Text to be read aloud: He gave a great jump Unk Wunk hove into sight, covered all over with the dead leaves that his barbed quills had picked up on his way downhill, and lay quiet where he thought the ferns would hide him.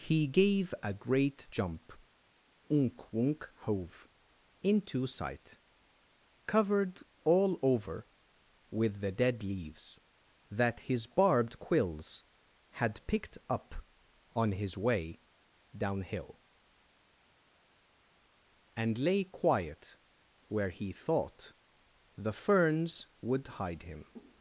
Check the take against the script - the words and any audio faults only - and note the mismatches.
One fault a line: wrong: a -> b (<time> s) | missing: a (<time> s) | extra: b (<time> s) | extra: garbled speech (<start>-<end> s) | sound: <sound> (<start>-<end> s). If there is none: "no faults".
no faults